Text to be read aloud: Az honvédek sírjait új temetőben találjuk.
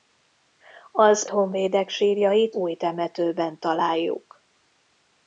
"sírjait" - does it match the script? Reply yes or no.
yes